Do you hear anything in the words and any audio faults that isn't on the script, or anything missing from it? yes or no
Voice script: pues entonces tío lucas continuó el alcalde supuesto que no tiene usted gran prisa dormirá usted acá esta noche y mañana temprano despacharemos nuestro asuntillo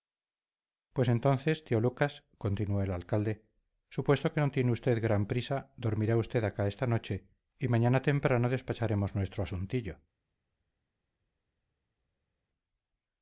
no